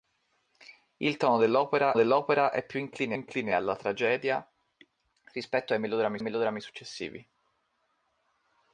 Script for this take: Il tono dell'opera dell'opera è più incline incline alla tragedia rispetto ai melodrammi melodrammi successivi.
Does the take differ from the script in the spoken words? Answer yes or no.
no